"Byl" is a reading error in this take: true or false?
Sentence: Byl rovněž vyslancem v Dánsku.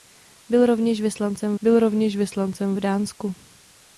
false